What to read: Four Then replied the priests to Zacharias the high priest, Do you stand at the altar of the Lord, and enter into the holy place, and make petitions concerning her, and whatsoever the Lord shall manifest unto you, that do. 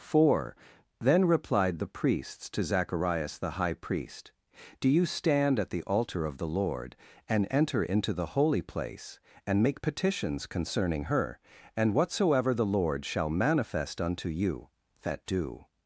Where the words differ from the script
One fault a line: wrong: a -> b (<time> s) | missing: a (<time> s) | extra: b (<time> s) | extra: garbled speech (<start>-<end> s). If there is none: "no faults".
no faults